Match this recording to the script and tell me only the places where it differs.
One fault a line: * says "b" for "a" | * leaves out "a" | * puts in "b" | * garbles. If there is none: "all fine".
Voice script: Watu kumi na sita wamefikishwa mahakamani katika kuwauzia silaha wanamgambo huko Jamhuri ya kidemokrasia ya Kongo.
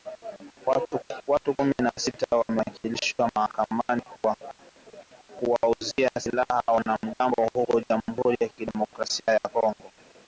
* says "kwa" for "katika"